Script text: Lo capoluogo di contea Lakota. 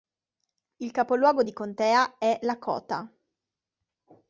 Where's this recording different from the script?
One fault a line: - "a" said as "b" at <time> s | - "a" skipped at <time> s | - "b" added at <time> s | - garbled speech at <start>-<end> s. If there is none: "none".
- "Lo" said as "Il" at 0.8 s
- "è" added at 2.2 s